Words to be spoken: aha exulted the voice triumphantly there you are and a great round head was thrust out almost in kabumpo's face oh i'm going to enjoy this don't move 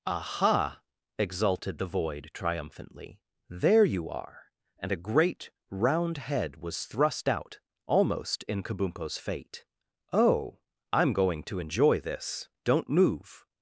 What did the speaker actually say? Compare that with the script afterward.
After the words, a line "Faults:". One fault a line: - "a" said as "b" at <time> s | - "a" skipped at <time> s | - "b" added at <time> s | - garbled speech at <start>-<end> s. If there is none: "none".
aha exulted the void triumphantly there you are and a great round head was thrust out almost in kabumpo's fate oh i'm going to enjoy this don't move
Faults:
- "voice" said as "void" at 1.9 s
- "face" said as "fate" at 9.2 s